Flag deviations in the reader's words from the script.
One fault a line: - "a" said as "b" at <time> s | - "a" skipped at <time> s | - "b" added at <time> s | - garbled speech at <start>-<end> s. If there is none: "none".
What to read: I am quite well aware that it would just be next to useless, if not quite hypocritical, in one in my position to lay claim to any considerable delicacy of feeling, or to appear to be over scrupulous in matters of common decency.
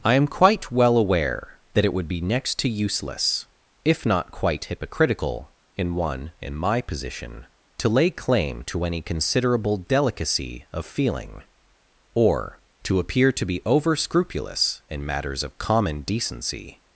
- "just" skipped at 2.1 s